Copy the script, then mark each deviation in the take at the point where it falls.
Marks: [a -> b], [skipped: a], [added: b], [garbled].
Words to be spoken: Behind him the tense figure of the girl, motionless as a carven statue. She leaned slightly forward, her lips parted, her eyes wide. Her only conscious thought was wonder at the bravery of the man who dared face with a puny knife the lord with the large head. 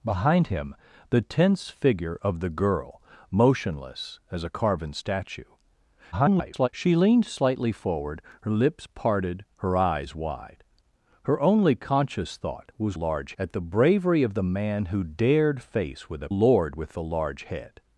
Behind him the tense figure of the girl, motionless as a carven statue. [garbled] She leaned slightly forward, her lips parted, her eyes wide. Her only conscious thought was [wonder -> large] at the bravery of the man who dared face with a [skipped: puny knife the] lord with the large head.